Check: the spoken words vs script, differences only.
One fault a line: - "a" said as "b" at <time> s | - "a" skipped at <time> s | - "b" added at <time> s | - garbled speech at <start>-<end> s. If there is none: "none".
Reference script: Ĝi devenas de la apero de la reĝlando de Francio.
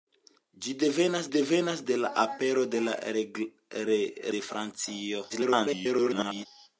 - "devenas" added at 1.4 s
- "reĝlando" skipped at 2.9 s
- garbled speech at 5.3-6.5 s